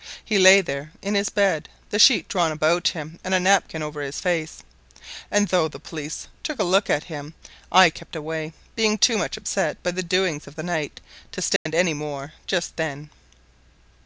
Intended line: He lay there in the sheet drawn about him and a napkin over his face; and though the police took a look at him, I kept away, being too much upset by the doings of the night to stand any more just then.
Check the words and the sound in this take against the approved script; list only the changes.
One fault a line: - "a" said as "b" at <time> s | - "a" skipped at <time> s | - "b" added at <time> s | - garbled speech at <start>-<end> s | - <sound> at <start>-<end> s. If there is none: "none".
- "his bed" added at 1.1 s
- dropout at 11.6-11.7 s